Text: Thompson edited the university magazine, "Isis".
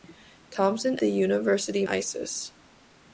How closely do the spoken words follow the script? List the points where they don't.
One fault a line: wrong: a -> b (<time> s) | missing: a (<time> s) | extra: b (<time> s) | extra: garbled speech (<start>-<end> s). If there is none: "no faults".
missing: edited (1.0 s)
missing: magazine (1.9 s)